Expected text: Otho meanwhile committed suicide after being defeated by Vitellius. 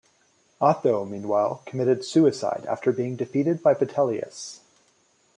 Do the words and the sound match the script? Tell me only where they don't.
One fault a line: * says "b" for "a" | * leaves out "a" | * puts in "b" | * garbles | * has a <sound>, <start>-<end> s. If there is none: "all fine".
all fine